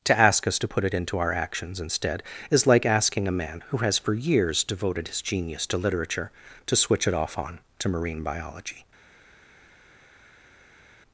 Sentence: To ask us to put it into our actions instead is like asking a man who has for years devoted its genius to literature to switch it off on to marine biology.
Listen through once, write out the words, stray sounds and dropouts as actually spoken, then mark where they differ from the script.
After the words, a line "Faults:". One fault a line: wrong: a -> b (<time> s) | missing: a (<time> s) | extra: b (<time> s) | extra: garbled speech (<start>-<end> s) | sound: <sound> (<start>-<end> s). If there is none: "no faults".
To ask us to put it into our actions instead is like asking a man who has for years devoted his genius to literature to switch it off on to marine biology.
Faults:
wrong: its -> his (5.1 s)